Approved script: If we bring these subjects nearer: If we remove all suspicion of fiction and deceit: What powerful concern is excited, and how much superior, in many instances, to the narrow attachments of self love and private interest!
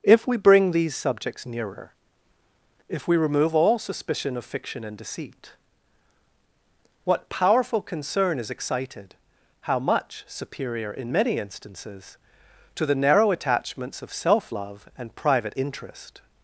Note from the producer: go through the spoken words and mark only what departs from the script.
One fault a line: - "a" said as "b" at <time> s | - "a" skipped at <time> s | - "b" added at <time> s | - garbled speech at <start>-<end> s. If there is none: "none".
- "and" skipped at 9.1 s